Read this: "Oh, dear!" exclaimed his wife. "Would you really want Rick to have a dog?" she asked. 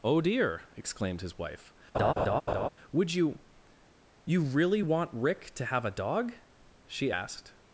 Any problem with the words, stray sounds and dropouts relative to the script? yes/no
yes